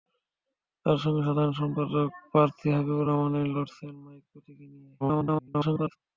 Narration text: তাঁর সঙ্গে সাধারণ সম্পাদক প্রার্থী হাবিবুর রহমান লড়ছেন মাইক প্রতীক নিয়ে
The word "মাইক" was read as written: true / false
true